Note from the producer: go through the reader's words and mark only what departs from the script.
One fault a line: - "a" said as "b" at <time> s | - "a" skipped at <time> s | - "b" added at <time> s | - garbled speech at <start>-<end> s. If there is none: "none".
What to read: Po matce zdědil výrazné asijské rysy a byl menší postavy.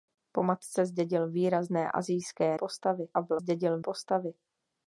- "rysy" said as "postavy" at 2.5 s
- "menší" said as "zdědil" at 3.4 s